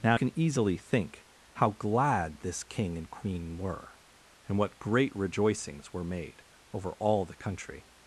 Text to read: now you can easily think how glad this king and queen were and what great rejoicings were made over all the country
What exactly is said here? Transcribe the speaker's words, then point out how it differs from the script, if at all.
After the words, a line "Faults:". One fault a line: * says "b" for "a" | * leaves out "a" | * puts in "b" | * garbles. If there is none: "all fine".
now can easily think how glad this king and queen were and what great rejoicings were made over all the country
Faults:
* leaves out "you"